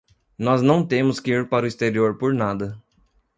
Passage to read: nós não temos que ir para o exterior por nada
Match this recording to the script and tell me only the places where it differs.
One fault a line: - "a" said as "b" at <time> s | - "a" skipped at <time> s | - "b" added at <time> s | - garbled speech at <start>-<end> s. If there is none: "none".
none